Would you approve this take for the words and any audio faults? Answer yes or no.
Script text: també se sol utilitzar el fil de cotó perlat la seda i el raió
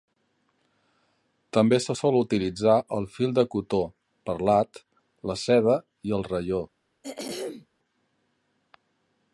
no